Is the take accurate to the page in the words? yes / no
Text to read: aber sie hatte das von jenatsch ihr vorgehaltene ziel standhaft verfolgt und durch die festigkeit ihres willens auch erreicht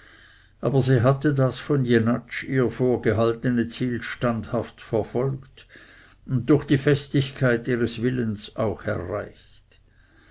yes